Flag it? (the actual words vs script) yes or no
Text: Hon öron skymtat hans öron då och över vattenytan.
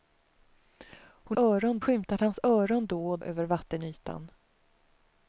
no